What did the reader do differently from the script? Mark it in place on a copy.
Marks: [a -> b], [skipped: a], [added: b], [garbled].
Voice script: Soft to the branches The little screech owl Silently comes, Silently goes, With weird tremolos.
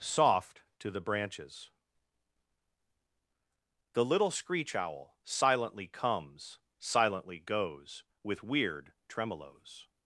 Soft to the branches The little screech owl Silently comes, Silently goes, With weird tremolos.